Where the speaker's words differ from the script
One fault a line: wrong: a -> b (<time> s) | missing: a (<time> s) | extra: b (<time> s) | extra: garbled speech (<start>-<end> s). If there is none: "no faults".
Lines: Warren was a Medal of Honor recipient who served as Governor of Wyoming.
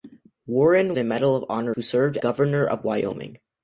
missing: was (1.0 s)
missing: recipient (1.7 s)
missing: as (2.2 s)